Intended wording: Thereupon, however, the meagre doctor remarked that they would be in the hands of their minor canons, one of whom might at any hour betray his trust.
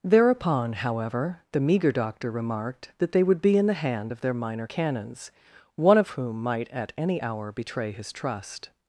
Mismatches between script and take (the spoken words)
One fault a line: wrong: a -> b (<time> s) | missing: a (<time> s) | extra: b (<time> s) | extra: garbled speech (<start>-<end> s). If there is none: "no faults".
wrong: hands -> hand (3.7 s)